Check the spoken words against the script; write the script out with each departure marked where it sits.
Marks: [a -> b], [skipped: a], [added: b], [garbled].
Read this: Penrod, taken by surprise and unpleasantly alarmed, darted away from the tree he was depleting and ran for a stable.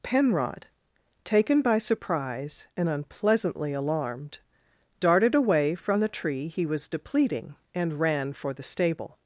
Penrod, taken by surprise and unpleasantly alarmed, darted away from the tree he was depleting and ran for [a -> the] stable.